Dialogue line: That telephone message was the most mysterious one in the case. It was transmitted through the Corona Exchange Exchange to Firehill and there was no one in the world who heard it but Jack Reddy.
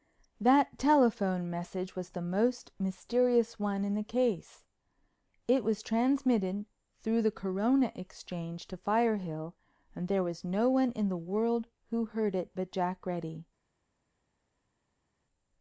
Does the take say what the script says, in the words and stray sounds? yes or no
no